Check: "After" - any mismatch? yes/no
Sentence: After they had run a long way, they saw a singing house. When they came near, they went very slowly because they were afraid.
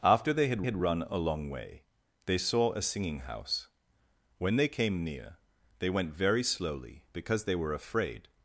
no